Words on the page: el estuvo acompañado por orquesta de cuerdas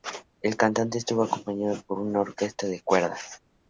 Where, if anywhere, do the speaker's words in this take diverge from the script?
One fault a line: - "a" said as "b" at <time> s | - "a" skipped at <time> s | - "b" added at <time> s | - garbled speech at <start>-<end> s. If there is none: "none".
- "cantante" added at 0.6 s
- "una" added at 2.0 s